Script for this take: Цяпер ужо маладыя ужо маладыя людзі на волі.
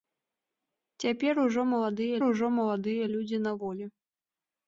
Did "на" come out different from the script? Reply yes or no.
no